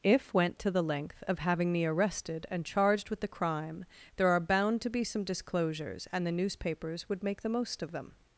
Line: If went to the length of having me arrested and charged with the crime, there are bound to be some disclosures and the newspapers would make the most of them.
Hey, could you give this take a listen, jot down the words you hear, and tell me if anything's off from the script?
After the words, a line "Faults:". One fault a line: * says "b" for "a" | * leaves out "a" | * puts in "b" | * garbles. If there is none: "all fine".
If went to the length of having me arrested and charged with the crime, there are bound to be some disclosures and the newspapers would make the most of them.
Faults:
all fine